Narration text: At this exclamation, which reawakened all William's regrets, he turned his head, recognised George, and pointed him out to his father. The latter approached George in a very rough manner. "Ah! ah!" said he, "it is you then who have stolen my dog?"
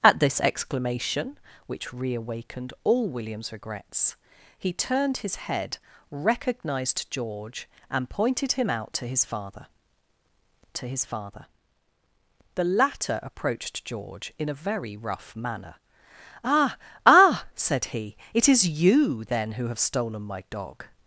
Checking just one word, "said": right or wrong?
right